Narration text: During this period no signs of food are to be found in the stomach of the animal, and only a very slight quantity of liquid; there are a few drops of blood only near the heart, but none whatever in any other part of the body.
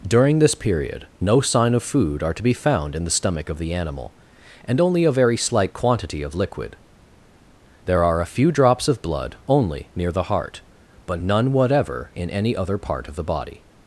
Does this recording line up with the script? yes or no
no